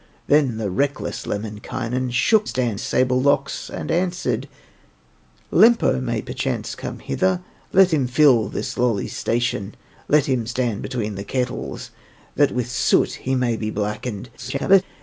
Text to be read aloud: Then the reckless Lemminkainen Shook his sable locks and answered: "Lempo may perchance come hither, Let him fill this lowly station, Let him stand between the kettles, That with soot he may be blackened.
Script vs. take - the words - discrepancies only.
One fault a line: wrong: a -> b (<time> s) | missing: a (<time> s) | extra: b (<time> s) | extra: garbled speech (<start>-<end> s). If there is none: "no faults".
wrong: his -> stand (2.4 s)
extra: garbled speech (14.4-14.8 s)